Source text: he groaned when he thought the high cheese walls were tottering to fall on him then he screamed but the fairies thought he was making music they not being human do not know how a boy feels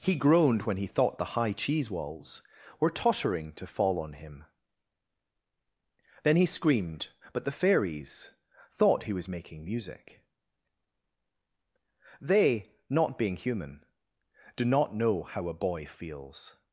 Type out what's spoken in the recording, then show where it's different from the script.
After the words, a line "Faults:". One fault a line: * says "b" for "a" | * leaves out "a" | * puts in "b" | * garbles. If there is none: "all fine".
he groaned when he thought the high cheese walls were tottering to fall on him then he screamed but the fairies thought he was making music they not being human do not know how a boy feels
Faults:
all fine